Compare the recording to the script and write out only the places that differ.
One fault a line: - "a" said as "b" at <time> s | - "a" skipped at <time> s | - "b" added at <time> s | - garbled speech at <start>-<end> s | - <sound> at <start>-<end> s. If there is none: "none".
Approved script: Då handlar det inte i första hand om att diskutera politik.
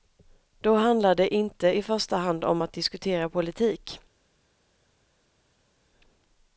none